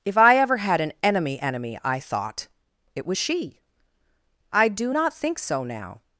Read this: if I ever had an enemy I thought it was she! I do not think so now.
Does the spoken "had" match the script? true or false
true